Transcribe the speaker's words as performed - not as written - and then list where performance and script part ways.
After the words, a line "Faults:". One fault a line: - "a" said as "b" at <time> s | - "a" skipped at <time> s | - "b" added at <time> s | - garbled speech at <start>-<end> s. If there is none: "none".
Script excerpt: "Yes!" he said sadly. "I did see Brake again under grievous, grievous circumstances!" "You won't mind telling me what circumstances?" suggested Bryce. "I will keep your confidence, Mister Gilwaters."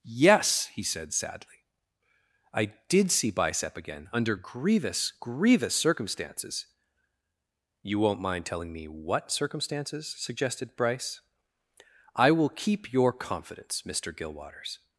"Yes!" he said sadly. "I did see Bicep again under grievous, grievous circumstances!" "You won't mind telling me what circumstances?" suggested Bryce. "I will keep your confidence, Mister Gilwaters."
Faults:
- "Brake" said as "Bicep" at 3.3 s